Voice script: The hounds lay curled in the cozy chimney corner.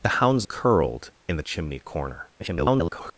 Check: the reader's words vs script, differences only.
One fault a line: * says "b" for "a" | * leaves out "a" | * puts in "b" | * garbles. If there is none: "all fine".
* leaves out "lay"
* leaves out "cozy"
* garbles